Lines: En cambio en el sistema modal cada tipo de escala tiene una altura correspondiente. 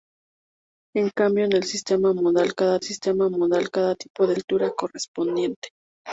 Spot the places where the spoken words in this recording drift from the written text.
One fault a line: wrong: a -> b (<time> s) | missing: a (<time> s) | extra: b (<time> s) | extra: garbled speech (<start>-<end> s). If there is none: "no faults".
wrong: tipo de escala tiene una -> sistema modal cada tipo de (2.8 s)